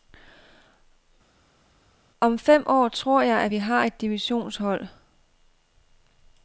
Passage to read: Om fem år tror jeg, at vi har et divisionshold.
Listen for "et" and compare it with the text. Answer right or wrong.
right